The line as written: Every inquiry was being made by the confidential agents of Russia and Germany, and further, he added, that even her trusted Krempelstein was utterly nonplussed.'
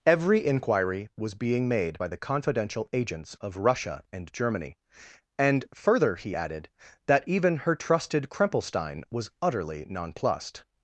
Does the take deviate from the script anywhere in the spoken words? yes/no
no